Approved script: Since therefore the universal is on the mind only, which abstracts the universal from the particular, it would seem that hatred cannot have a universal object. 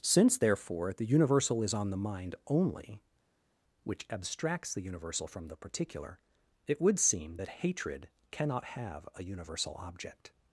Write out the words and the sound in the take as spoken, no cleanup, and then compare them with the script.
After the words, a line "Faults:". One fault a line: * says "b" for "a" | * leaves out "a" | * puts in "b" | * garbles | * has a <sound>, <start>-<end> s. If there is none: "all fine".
Since therefore the universal is on the mind only, which abstracts the universal from the particular, it would seem that hatred cannot have a universal object.
Faults:
all fine